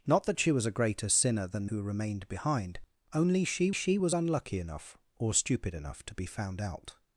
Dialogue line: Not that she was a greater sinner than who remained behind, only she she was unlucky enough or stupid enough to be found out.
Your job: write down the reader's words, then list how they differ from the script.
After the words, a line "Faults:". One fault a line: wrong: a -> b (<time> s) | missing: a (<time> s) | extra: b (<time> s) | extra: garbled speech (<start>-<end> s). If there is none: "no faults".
Not that she was a greater sinner than who remained behind, only she she was unlucky enough or stupid enough to be found out.
Faults:
no faults